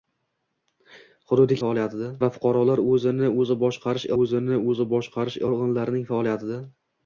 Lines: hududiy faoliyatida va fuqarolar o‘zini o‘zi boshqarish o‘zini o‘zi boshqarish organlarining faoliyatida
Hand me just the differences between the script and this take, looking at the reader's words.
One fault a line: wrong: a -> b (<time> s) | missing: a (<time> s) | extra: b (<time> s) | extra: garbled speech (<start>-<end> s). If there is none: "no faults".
no faults